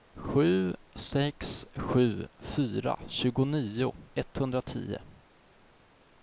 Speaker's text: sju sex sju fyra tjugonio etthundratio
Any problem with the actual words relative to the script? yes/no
no